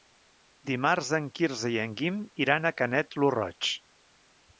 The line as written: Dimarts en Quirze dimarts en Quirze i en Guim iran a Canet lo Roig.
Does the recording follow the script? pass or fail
fail